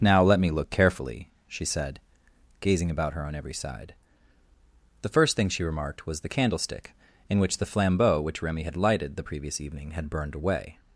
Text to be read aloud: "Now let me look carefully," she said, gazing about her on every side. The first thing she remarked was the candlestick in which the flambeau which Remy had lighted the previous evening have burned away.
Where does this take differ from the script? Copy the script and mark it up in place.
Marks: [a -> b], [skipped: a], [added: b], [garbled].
"Now let me look carefully," she said, gazing about her on every side. The first thing she remarked was the candlestick in which the flambeau which Remy had lighted the previous evening [have -> had] burned away.